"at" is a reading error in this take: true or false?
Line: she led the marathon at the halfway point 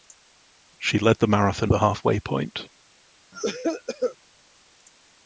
true